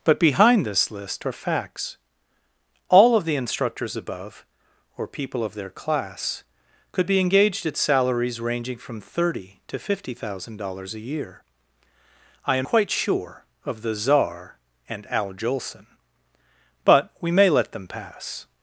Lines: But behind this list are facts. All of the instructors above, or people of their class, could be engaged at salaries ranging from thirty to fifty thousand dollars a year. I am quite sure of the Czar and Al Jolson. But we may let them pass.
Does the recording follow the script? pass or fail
pass